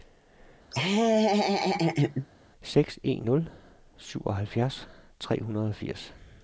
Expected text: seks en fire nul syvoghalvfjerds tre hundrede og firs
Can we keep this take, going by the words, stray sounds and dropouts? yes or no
no